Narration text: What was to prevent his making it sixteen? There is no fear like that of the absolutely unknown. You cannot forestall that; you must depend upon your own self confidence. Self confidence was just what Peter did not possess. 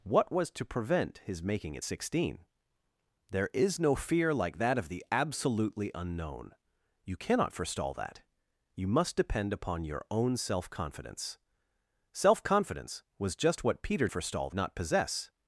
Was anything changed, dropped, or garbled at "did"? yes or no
yes